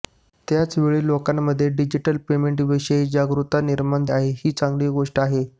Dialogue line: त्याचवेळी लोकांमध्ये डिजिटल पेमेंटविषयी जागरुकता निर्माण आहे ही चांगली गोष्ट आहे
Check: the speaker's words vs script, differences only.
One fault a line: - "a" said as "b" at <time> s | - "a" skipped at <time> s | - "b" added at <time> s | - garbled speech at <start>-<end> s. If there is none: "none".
none